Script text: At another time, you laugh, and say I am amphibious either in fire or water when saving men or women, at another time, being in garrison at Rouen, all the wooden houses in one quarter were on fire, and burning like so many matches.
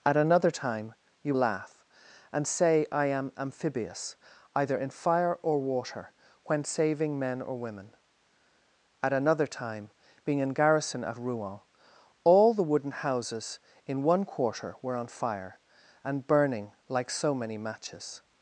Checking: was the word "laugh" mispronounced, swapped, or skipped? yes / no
no